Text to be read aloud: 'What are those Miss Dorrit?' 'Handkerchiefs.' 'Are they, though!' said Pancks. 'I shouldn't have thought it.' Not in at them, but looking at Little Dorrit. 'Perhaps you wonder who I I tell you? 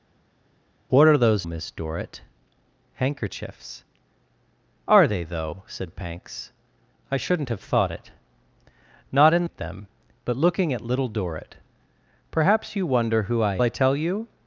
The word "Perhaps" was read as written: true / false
true